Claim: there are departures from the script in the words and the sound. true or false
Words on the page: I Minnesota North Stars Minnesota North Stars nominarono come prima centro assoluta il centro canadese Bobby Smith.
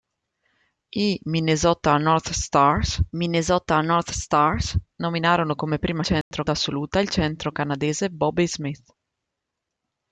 true